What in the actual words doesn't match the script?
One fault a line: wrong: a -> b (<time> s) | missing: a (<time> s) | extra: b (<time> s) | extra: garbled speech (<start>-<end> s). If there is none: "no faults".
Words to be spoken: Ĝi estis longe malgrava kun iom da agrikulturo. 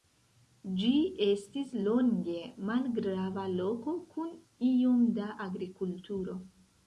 extra: loko (3.6 s)